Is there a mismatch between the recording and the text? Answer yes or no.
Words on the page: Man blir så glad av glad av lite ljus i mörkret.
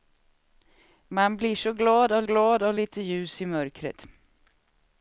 no